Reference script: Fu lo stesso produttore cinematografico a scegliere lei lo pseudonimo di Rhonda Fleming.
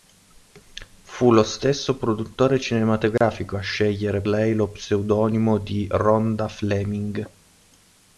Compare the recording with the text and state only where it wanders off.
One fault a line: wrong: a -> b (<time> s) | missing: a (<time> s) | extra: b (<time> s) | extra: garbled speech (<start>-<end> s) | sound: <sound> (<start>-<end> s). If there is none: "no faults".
sound: dropout (3.2-3.2 s)